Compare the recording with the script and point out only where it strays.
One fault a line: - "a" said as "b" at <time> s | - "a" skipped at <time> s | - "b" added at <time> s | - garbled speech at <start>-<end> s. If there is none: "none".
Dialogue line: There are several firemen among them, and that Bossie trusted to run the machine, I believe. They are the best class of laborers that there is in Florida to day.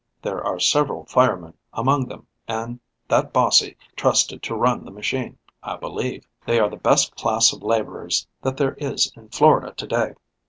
none